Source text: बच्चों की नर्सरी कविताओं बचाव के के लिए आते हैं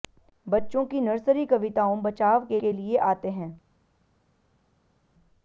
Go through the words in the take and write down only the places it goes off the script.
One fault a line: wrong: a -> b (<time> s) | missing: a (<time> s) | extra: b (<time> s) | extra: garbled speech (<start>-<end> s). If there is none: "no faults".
no faults